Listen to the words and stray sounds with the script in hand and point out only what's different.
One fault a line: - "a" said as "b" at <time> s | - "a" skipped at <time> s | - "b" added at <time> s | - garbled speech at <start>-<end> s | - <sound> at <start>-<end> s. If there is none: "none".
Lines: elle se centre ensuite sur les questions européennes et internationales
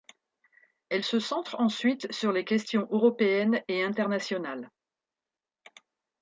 none